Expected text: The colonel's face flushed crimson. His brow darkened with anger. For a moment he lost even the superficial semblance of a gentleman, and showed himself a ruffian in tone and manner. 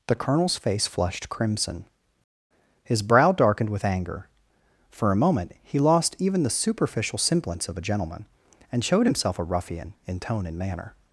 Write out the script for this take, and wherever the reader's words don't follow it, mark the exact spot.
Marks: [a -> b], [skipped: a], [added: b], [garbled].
The colonel's face flushed crimson. His brow darkened with anger. For a moment he lost even the superficial semblance of a gentleman, and showed himself a ruffian in tone and manner.